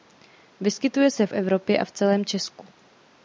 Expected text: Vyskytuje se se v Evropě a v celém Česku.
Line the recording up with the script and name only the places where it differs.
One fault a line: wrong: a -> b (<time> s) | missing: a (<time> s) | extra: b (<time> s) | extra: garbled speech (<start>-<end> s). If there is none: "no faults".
missing: se (1.3 s)